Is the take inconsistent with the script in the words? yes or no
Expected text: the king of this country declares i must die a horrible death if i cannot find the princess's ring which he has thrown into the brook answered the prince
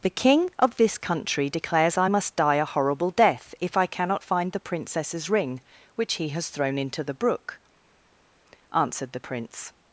no